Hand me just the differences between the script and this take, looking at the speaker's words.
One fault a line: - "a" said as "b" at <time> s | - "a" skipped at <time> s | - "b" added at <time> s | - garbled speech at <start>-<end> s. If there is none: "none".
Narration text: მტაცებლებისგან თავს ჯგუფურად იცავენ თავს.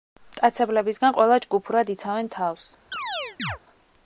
- "თავს" said as "ყველა" at 1.2 s